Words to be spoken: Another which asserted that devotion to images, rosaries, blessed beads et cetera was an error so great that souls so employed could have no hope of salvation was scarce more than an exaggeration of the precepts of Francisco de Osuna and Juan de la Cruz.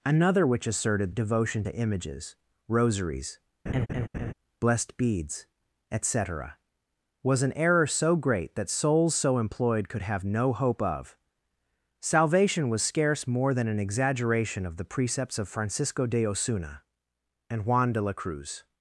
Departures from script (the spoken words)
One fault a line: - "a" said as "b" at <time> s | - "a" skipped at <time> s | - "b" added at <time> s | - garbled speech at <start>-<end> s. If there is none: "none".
- "that" skipped at 1.1 s